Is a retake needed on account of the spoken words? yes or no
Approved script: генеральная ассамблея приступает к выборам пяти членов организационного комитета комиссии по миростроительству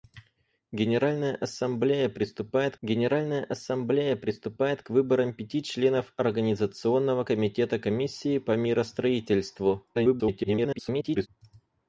yes